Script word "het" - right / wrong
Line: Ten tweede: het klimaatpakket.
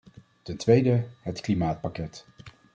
right